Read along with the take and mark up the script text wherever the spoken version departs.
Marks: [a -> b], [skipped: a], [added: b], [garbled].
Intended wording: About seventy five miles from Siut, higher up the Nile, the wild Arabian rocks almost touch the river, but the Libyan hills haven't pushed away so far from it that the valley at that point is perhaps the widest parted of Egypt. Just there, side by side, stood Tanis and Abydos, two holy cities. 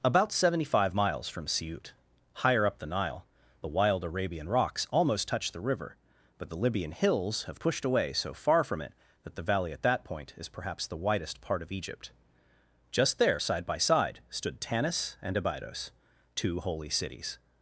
About seventy five miles from Siut, higher up the Nile, the wild Arabian rocks almost touch the river, but the Libyan hills [haven't -> have] pushed away so far from it that the valley at that point is perhaps the widest [parted -> part] of Egypt. Just there, side by side, stood Tanis and Abydos, two holy cities.